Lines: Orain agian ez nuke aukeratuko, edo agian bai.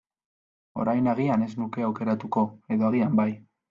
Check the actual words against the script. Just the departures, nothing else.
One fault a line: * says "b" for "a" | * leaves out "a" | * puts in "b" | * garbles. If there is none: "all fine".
all fine